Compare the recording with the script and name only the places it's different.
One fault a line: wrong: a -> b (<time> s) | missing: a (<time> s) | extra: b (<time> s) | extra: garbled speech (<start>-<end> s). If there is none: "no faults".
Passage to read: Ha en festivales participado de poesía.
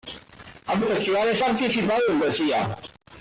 no faults